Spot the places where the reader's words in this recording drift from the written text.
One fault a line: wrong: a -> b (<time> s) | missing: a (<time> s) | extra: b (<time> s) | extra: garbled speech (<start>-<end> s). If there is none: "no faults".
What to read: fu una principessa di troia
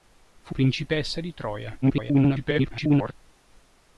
missing: una (0.6 s)
extra: garbled speech (1.8-3.1 s)